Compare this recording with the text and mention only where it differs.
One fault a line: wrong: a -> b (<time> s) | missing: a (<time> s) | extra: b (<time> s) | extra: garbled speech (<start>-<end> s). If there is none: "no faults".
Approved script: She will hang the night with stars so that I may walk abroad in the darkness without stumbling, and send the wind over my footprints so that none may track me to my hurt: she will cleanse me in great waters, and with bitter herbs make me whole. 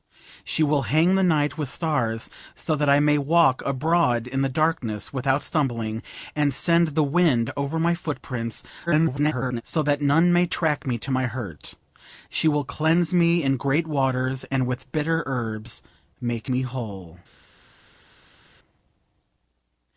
extra: garbled speech (8.9-9.6 s)